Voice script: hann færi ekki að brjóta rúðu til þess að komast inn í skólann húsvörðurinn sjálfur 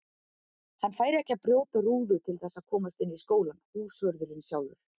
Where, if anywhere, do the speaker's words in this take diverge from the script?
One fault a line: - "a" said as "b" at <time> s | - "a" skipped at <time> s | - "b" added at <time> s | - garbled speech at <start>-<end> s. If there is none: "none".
none